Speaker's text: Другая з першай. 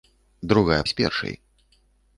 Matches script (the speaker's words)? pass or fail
pass